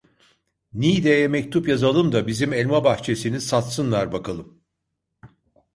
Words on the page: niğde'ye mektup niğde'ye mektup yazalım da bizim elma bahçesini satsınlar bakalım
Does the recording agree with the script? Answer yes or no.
no